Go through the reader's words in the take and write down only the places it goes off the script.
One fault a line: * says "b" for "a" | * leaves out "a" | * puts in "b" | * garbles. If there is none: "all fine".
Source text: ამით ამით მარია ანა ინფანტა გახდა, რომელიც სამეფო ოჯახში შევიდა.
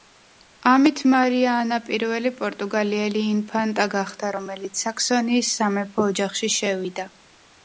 * leaves out "ამით"
* puts in "პირველი პორტუგალიელი"
* puts in "საქსონიის"